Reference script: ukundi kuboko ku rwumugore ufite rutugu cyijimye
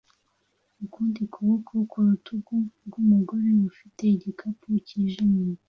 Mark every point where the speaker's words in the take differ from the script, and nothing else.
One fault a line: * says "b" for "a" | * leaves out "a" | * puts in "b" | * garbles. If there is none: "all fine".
* puts in "rutugu"
* says "igikapu" for "rutugu"